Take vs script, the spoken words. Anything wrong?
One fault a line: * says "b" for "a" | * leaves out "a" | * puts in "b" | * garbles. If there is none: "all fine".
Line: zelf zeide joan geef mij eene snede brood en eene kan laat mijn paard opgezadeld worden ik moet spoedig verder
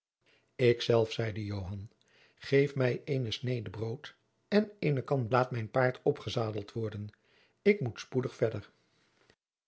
all fine